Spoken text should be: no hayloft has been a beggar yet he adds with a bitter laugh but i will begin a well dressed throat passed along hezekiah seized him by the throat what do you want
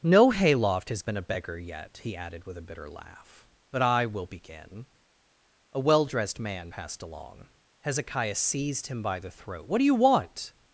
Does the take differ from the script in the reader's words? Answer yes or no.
yes